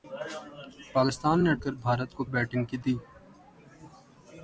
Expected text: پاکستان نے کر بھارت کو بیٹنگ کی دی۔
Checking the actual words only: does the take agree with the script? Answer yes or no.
yes